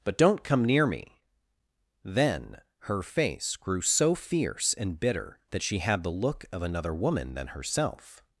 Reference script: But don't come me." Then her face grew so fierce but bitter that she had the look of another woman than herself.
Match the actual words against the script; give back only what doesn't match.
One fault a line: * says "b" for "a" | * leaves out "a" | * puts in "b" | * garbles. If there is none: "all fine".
* puts in "near"
* says "and" for "but"